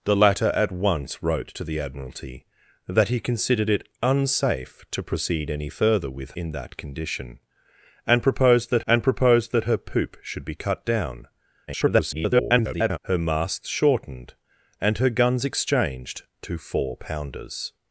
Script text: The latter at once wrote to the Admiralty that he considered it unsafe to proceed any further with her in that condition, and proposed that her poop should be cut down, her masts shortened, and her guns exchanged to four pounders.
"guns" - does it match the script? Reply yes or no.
yes